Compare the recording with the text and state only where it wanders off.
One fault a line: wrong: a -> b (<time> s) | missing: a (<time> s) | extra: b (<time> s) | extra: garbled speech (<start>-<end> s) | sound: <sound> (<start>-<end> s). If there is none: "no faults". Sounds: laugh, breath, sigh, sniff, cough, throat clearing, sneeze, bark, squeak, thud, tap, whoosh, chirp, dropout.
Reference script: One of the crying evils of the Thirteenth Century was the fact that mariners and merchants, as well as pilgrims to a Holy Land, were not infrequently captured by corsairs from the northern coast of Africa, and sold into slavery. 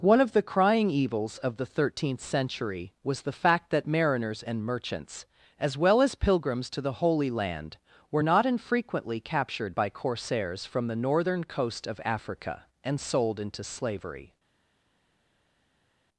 wrong: a -> the (6.8 s)